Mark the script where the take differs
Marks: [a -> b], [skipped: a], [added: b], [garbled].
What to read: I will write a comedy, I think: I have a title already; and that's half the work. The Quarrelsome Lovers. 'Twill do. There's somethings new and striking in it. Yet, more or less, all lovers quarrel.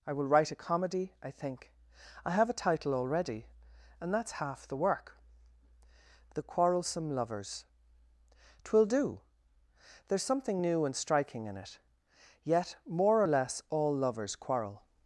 I will write a comedy, I think: I have a title already; and that's half the work. The Quarrelsome Lovers. 'Twill do. There's [somethings -> something] new and striking in it. Yet, more or less, all lovers quarrel.